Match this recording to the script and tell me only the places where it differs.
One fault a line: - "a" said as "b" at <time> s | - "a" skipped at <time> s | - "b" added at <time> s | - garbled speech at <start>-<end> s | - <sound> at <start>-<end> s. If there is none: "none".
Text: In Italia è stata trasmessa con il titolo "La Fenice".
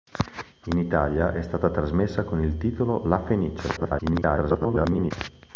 - garbled speech at 3.8-5.1 s